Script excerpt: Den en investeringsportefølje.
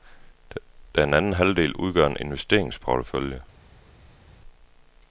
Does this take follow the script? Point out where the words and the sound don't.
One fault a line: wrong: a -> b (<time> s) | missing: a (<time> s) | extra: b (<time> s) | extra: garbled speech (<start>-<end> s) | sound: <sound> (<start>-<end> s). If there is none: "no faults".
extra: anden halvdel udgør (1.1 s)